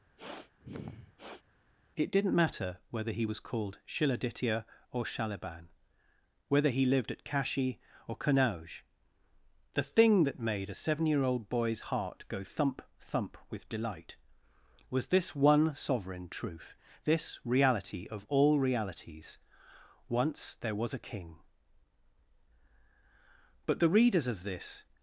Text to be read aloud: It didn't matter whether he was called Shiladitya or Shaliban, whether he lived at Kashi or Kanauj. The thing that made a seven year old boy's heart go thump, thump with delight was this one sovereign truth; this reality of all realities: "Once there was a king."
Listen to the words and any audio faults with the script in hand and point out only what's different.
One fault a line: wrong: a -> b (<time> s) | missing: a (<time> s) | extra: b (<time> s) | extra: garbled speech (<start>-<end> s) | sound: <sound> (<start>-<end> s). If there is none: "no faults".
sound: sniff (0.2-1.4 s)
extra: But the readers of this (23.7 s)